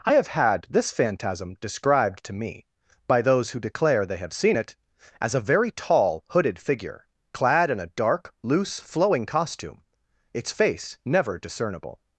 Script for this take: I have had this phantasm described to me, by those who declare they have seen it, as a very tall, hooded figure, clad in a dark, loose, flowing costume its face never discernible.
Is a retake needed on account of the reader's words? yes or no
no